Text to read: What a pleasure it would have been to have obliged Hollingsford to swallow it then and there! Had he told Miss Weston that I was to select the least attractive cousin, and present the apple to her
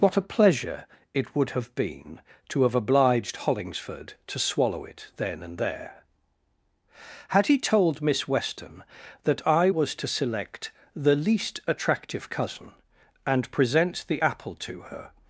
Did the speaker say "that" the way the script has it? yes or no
yes